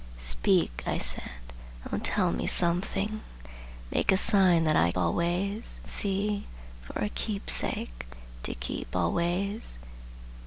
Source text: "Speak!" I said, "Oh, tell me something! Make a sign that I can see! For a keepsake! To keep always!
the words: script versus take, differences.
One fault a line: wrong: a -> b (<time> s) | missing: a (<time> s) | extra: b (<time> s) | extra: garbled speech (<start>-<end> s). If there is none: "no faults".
wrong: can -> always (5.0 s)